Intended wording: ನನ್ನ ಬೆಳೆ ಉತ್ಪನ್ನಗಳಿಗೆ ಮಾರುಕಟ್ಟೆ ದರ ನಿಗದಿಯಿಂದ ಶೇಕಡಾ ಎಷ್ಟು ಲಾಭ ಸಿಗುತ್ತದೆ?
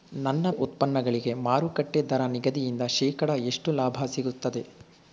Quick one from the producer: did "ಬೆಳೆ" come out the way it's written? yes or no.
no